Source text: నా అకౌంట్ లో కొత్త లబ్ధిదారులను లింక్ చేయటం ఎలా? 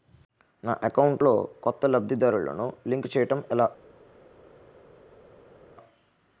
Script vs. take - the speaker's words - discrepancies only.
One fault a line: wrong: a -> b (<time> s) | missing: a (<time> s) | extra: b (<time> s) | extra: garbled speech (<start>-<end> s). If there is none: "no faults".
no faults